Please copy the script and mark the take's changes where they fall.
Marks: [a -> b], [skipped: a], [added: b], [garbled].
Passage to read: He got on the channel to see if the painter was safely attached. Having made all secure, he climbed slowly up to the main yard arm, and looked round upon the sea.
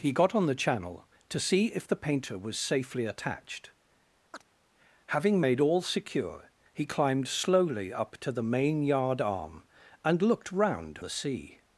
He got on the channel to see if the painter was safely attached. Having made all secure, he climbed slowly up to the main yard arm, and looked round [skipped: upon] the sea.